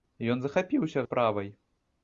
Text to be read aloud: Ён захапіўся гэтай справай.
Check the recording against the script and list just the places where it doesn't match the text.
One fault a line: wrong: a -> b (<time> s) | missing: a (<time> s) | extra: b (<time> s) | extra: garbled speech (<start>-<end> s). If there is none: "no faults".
missing: гэтай (1.1 s)